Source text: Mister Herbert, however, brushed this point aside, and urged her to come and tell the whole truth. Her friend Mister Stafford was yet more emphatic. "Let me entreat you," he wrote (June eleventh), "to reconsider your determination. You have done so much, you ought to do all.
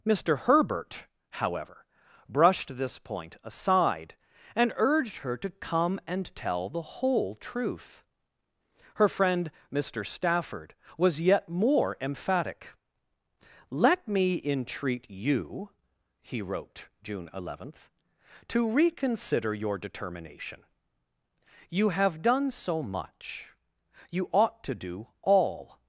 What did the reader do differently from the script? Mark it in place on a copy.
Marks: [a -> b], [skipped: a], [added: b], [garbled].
Mister Herbert, however, brushed this point aside, and urged her to come and tell the whole truth. Her friend Mister Stafford was yet more emphatic. "Let me entreat you," he wrote (June eleventh), "to reconsider your determination. You have done so much, you ought to do all.